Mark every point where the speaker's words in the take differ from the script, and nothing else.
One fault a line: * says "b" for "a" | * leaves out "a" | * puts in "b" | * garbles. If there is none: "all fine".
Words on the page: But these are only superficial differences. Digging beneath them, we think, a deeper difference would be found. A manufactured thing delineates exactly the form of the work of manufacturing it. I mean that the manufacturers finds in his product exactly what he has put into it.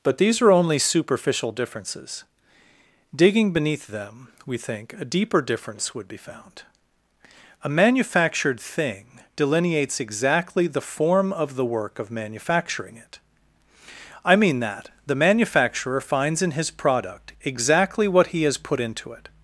* says "manufacturer" for "manufacturers"